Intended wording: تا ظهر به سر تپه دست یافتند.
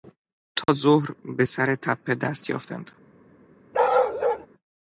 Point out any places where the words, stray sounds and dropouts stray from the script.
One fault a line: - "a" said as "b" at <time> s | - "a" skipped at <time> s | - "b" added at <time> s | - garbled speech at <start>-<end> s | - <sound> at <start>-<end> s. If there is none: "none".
- dropout at 0.6-0.7 s
- bark at 3.7-4.5 s